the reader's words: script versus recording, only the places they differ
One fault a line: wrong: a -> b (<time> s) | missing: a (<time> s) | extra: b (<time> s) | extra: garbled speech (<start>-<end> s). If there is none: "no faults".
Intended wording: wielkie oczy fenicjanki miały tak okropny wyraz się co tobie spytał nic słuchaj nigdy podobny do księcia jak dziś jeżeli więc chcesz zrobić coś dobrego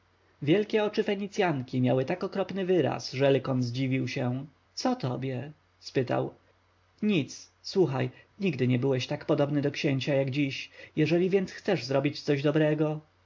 extra: że lykon zdziwił (3.1 s)
extra: nie byłeś tak (8.7 s)